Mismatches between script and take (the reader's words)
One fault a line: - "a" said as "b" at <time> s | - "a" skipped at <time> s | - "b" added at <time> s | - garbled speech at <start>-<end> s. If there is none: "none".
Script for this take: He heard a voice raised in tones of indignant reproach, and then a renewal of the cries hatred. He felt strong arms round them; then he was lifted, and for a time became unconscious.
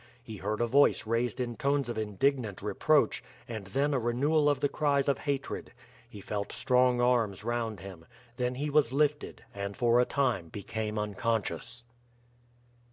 - "of" added at 5.1 s
- "them" said as "him" at 7.8 s